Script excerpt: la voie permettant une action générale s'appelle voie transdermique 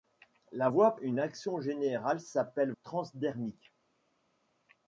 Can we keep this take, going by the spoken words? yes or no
no